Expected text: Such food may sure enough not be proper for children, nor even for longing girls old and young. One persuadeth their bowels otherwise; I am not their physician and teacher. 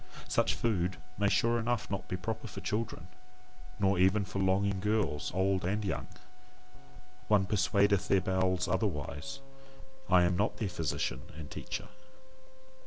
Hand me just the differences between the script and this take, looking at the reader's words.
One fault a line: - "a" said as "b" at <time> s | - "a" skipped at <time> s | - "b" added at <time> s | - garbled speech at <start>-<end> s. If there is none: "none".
none